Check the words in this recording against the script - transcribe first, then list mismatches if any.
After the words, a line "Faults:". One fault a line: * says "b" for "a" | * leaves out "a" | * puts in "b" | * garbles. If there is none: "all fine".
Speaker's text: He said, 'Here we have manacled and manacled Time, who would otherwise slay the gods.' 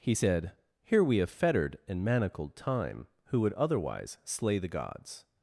He said, 'Here we have fettered and manacled Time, who would otherwise slay the gods.'
Faults:
* says "fettered" for "manacled"